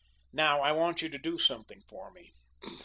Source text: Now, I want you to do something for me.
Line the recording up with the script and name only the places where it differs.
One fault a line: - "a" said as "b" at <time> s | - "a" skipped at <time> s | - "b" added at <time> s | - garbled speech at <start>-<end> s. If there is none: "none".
none